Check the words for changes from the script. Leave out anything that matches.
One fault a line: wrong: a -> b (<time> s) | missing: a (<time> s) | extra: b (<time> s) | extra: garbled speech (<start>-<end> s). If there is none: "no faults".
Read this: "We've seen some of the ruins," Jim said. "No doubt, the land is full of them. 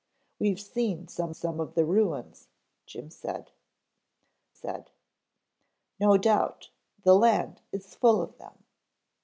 extra: some (1.3 s)
extra: said (4.5 s)